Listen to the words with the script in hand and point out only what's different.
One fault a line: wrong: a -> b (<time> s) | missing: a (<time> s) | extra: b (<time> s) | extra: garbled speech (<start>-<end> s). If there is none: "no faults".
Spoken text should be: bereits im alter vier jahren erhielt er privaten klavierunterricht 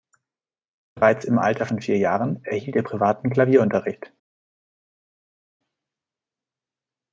extra: von (1.6 s)